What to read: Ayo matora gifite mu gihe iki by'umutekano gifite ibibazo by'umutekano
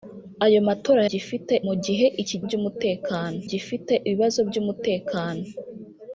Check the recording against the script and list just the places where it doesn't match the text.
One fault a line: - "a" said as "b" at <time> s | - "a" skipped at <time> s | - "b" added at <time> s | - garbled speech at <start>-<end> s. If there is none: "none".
none